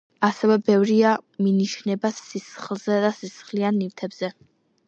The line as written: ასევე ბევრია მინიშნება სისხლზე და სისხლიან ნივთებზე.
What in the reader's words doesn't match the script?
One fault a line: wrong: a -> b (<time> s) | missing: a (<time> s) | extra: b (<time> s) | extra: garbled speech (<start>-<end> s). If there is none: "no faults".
no faults